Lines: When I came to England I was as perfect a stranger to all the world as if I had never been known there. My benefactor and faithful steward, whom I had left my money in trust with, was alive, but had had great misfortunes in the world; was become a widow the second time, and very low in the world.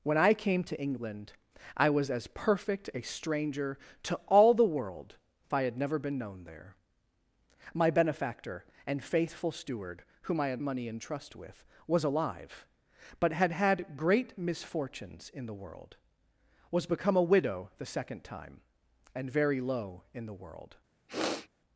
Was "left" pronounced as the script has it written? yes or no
no